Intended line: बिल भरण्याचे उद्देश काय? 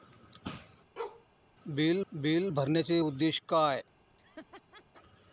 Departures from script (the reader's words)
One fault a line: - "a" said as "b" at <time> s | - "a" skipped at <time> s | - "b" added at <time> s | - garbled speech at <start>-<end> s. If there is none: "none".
- "बिल" added at 2.1 s